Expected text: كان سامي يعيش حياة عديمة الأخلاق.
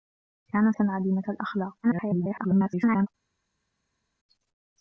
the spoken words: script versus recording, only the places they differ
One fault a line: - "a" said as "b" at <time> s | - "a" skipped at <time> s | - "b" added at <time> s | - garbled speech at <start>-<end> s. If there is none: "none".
- "سامي يعيش حياة" skipped at 0.7 s
- garbled speech at 1.8-3.1 s